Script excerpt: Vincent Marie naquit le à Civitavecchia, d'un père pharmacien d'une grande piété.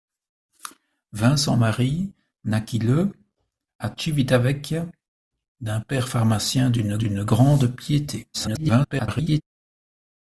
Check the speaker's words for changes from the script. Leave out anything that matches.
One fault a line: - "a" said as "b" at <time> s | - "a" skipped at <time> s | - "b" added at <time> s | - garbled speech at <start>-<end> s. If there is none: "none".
- "d'une" added at 7.0 s
- garbled speech at 8.3-9.4 s